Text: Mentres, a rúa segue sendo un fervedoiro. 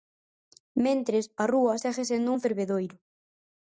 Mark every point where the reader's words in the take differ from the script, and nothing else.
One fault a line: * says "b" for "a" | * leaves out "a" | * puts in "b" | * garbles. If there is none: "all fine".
all fine